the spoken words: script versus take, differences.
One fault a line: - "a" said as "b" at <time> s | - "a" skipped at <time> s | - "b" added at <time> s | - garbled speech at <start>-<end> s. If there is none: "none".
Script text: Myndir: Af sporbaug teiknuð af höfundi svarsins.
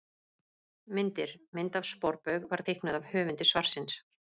- "Mynd" added at 1.6 s
- "var" added at 2.5 s